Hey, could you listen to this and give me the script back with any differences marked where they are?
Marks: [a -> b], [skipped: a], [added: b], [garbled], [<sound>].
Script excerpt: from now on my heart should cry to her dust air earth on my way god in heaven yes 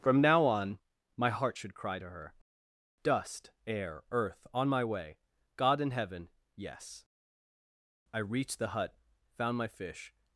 from now on my heart should cry to her dust air earth on my way god in heaven yes [added: i reached the hut found my fish]